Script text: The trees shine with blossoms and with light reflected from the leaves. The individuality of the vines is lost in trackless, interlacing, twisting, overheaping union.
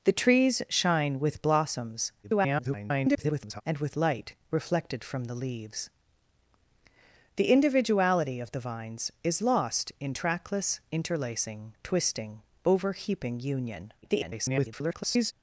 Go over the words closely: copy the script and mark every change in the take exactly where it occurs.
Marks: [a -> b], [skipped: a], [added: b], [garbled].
The trees shine with blossoms [garbled] and with light reflected from the leaves. The individuality of the vines is lost in trackless, interlacing, twisting, overheaping union. [garbled]